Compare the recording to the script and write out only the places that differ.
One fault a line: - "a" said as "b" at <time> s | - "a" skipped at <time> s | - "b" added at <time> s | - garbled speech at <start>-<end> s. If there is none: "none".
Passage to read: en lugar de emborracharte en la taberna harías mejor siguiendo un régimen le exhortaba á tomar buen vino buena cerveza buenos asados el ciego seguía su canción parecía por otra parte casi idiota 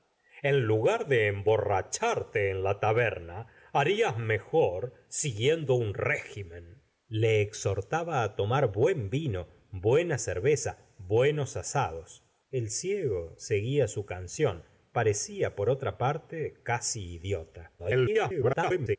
- garbled speech at 17.8-19.0 s